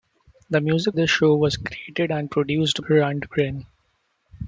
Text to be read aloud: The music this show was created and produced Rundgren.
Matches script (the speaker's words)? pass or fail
pass